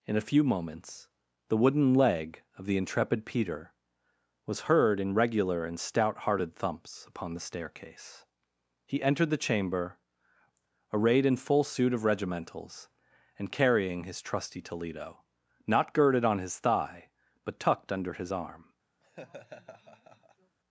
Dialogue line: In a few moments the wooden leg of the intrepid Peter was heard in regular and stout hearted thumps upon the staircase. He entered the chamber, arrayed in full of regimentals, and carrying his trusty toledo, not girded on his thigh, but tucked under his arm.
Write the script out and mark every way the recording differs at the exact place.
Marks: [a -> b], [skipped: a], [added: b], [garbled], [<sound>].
In a few moments the wooden leg of the intrepid Peter was heard in regular and stout hearted thumps upon the staircase. He entered the chamber, arrayed in full [added: suit] of regimentals, and carrying his trusty toledo, not girded on his thigh, but tucked under his arm. [laugh]